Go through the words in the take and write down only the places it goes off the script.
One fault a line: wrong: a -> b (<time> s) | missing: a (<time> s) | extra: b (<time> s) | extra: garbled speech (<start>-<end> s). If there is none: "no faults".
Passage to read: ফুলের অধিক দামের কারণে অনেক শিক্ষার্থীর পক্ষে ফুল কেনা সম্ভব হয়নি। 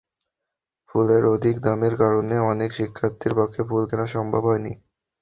no faults